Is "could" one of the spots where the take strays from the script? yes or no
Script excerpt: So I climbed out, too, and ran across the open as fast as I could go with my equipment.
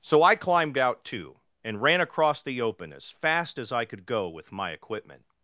no